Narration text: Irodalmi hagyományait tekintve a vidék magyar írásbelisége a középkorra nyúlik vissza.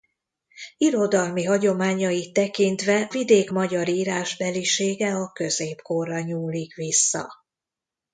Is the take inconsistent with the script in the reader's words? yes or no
yes